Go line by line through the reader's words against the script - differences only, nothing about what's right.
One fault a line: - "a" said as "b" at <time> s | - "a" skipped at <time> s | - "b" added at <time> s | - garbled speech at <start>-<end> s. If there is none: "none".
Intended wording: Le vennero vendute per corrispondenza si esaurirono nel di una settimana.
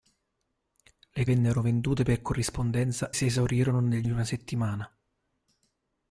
none